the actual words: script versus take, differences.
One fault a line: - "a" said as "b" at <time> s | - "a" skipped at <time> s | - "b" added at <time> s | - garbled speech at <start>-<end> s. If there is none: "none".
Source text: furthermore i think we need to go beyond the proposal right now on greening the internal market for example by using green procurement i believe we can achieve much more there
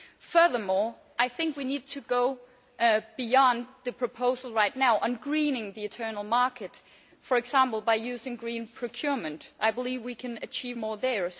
- "much" skipped at 10.8 s